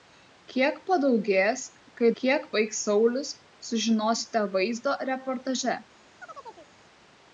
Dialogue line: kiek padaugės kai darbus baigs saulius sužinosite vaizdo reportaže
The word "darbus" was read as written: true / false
false